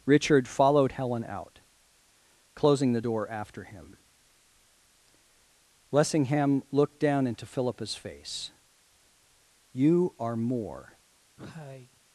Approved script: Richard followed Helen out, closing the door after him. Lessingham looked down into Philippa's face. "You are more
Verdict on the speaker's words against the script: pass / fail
pass